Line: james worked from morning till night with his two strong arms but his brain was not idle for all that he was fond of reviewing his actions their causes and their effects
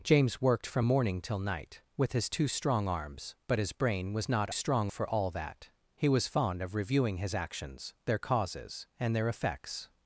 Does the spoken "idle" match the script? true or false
false